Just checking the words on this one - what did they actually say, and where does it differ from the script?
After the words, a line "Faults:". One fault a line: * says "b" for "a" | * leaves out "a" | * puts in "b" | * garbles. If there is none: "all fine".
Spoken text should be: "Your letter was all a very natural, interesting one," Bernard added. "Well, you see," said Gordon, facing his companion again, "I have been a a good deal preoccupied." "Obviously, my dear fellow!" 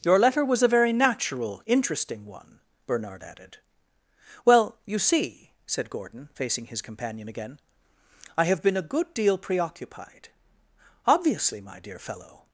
"Your letter was a very natural, interesting one," Bernard added. "Well, you see," said Gordon, facing his companion again, "I have been a good deal preoccupied." "Obviously, my dear fellow!"
Faults:
* leaves out "all"
* leaves out "a"